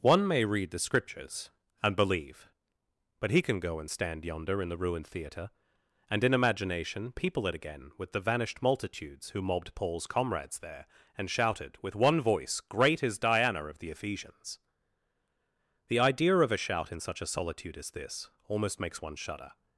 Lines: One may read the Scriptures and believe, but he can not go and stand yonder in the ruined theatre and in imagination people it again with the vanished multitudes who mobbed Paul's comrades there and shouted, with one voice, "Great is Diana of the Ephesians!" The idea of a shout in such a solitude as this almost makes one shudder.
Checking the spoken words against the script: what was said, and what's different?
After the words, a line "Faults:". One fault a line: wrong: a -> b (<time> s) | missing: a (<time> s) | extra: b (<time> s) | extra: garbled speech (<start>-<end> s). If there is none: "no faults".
One may read the Scriptures and believe, but he can go and stand yonder in the ruined theatre and in imagination people it again with the vanished multitudes who mobbed Paul's comrades there and shouted, with one voice, "Great is Diana of the Ephesians!" The idea of a shout in such a solitude as this almost makes one shudder.
Faults:
missing: not (3.6 s)